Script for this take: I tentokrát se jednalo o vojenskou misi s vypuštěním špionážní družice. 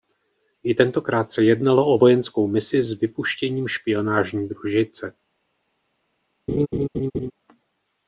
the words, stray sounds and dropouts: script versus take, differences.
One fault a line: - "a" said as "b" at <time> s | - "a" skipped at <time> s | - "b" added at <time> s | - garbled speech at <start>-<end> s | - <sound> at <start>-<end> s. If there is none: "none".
- laugh at 6.5-7.3 s